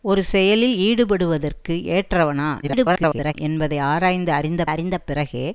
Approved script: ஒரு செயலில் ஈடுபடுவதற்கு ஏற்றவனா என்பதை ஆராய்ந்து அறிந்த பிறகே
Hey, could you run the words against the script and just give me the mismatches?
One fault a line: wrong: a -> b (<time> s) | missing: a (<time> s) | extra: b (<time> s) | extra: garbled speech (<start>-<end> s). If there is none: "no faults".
extra: garbled speech (2.6-3.3 s)
extra: அறிந்த (4.7 s)